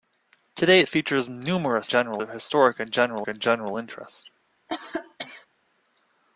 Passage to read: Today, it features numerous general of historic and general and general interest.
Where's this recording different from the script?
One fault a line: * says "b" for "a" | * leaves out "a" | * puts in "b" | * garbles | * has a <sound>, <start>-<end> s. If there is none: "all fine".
* has a cough, 4.7-5.5 s